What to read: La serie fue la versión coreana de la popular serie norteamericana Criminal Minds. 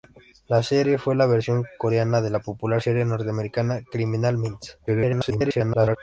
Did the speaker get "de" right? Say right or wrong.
right